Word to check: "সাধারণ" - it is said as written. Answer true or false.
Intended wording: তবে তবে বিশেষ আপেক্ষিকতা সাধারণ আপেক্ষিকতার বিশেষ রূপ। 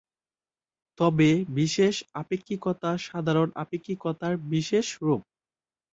true